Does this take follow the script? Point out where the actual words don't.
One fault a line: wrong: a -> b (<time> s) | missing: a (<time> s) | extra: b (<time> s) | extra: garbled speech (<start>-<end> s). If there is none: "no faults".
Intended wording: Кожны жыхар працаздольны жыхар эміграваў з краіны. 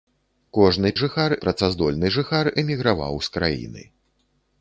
no faults